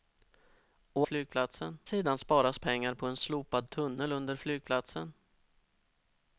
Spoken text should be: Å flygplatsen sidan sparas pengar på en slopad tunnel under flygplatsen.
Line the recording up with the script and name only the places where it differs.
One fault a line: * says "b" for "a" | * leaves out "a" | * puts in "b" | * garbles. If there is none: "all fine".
all fine